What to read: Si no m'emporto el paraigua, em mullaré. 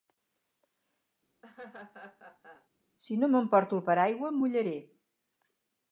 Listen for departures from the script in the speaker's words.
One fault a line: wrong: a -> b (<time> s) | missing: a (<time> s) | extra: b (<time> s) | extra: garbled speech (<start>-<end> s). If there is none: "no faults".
no faults